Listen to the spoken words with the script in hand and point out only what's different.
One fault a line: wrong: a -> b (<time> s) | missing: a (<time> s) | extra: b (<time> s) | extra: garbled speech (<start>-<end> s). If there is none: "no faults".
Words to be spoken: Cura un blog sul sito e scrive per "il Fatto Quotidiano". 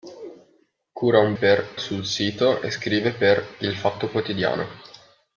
wrong: blog -> per (1.3 s)